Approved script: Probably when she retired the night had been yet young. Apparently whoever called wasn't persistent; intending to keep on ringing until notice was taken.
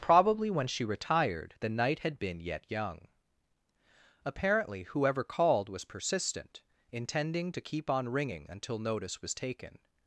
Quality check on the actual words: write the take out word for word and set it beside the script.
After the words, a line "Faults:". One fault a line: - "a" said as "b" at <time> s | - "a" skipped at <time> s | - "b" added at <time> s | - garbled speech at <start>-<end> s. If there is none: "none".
Probably when she retired the night had been yet young. Apparently whoever called was persistent; intending to keep on ringing until notice was taken.
Faults:
- "wasn't" said as "was" at 5.7 s